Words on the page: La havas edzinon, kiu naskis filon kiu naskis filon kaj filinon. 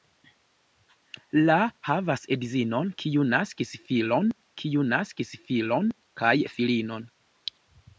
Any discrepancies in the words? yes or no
no